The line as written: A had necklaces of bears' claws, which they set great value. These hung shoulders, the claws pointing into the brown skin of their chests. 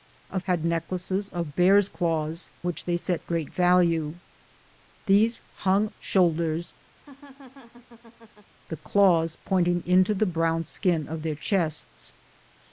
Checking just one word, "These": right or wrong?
right